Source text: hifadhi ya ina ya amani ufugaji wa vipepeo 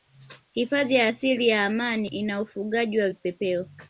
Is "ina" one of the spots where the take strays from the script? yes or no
yes